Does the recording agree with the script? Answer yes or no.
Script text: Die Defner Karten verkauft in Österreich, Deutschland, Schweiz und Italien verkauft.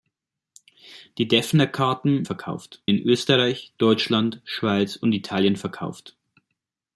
yes